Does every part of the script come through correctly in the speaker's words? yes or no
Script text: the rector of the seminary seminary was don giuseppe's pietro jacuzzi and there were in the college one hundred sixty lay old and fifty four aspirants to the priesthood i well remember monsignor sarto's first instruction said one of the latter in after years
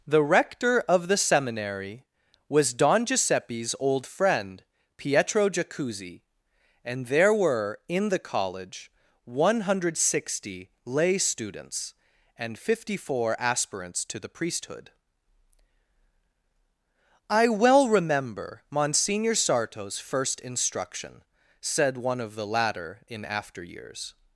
no